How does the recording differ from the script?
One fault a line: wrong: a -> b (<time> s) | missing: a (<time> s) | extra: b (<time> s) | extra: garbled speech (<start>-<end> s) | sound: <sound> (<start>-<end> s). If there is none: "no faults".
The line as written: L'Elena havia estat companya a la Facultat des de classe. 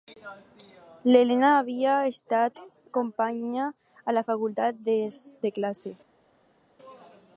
no faults